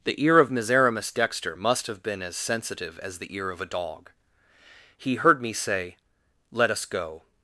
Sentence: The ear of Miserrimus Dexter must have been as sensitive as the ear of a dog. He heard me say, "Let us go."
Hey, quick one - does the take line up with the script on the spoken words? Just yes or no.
yes